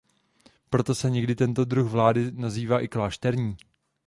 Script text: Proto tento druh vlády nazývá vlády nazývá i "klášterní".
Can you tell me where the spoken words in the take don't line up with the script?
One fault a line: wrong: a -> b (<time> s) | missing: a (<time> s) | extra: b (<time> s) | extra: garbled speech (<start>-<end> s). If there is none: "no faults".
extra: se někdy (0.9 s)
missing: vlády nazývá (2.8 s)